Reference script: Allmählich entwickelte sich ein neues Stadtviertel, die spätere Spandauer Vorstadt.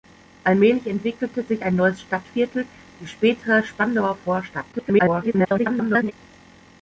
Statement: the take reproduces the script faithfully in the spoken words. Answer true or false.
false